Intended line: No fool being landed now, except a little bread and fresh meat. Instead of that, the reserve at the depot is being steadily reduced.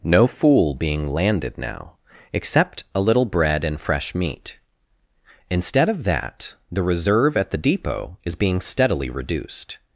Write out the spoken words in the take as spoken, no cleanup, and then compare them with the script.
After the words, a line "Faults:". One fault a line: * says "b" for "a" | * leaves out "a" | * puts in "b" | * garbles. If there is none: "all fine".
No fool being landed now, except a little bread and fresh meat. Instead of that, the reserve at the depot is being steadily reduced.
Faults:
all fine